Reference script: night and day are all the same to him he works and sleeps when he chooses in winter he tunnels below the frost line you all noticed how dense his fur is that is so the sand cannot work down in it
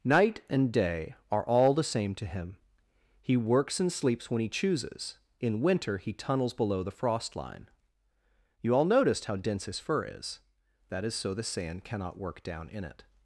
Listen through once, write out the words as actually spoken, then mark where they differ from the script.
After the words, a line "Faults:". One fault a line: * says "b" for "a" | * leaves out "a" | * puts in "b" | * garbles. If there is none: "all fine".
night and day are all the same to him he works and sleeps when he chooses in winter he tunnels below the frost line you all noticed how dense his fur is that is so the sand cannot work down in it
Faults:
all fine